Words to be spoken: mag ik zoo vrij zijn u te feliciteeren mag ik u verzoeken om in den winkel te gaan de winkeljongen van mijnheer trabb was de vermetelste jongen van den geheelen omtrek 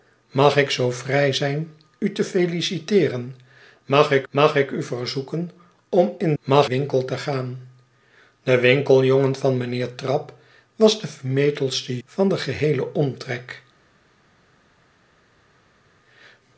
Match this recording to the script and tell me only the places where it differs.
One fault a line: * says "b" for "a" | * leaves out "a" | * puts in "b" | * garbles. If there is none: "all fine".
* puts in "mag ik"
* says "mag" for "den"
* leaves out "jongen"